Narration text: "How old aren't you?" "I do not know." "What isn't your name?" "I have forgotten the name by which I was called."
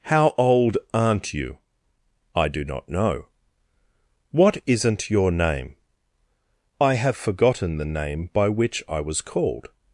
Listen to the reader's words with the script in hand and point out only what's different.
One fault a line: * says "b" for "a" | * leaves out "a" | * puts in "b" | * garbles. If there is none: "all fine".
all fine